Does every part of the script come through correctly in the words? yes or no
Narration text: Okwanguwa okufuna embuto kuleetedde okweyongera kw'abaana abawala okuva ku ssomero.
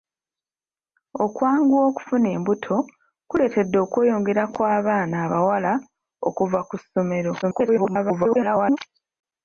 no